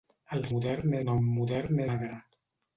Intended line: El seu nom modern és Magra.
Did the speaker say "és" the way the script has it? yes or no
no